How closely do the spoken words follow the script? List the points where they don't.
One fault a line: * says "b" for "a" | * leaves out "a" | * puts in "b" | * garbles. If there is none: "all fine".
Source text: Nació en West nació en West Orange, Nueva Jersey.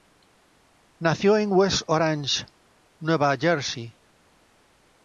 * leaves out "nació en West"